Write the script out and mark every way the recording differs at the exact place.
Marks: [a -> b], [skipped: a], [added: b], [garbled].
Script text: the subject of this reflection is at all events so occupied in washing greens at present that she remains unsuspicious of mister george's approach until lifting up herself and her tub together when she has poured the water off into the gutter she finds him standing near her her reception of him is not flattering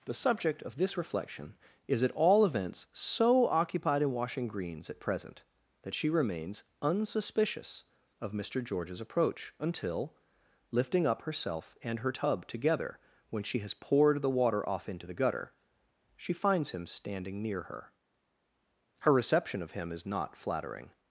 the subject of this reflection is at all events so occupied in washing greens at present that she remains unsuspicious of mister george's approach until lifting up herself and her tub together when she has poured the water off into the gutter she finds him standing near her her reception of him is not flattering